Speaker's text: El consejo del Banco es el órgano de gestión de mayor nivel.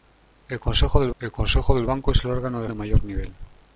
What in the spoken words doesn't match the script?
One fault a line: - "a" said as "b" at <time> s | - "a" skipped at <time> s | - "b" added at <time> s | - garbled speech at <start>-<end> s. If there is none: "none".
- "el consejo del" added at 1.2 s
- "gestión" skipped at 2.7 s